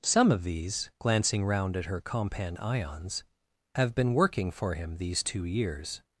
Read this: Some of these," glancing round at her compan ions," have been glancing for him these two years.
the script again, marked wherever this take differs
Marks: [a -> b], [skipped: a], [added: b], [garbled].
Some of these," glancing round at her compan ions," have been [glancing -> working] for him these two years.